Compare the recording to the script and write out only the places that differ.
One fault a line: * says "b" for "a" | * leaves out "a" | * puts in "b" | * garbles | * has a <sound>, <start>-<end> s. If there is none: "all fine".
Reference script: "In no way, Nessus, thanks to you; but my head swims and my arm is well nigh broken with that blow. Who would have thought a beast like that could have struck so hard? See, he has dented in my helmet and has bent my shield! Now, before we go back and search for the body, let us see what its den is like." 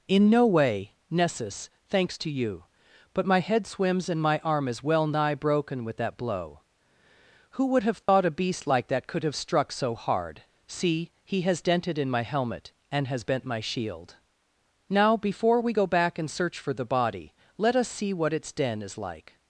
* has a dropout, 8.0-8.1 s